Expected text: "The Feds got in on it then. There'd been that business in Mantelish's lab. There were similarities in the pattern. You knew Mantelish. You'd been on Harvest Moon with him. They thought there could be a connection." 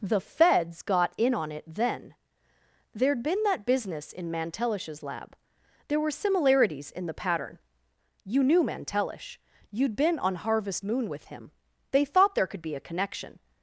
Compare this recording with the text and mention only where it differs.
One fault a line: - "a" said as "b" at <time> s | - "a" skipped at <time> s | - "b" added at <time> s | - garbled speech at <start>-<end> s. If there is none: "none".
none